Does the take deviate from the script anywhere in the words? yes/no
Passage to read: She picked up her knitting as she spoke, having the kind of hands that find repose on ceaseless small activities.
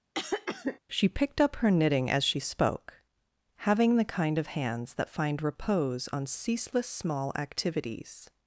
no